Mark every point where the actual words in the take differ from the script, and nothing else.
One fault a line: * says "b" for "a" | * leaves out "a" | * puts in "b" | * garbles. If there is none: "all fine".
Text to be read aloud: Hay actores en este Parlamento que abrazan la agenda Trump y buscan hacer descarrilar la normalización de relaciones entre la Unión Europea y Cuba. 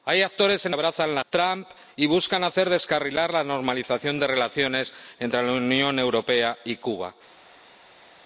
* leaves out "este Parlamento que"
* leaves out "agenda"